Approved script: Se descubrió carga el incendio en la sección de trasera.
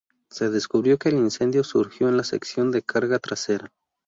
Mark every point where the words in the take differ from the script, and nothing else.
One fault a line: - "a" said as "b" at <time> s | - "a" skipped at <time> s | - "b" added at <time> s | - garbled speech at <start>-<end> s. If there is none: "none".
- "carga" said as "que" at 0.9 s
- "surgió" added at 1.6 s
- "carga" added at 2.8 s